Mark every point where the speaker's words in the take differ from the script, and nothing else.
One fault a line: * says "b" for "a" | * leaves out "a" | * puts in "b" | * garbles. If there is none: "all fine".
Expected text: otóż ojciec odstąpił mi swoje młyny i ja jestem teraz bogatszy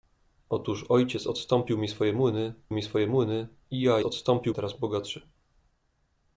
* puts in "mi swoje młyny"
* says "odstąpił" for "jestem"